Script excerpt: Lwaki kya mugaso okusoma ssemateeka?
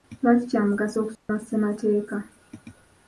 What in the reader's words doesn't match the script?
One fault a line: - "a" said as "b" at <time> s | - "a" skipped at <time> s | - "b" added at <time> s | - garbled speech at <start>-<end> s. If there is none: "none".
none